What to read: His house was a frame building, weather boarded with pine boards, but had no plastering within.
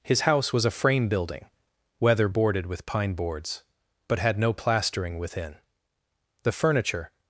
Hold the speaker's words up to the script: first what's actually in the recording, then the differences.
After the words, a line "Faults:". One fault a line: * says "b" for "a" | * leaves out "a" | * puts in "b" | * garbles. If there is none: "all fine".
His house was a frame building, weather boarded with pine boards, but had no plastering within. The furniture
Faults:
* puts in "The furniture"